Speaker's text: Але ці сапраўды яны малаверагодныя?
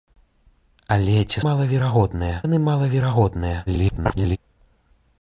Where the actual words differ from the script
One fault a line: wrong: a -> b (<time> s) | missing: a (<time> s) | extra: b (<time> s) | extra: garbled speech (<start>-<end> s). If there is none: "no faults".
wrong: сапраўды -> малаверагодныя (1.5 s)
extra: garbled speech (3.7-4.4 s)